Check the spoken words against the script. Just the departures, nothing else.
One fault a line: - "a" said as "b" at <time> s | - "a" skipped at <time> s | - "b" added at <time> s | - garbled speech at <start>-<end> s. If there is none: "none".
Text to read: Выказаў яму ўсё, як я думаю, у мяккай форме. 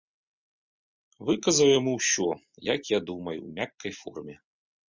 none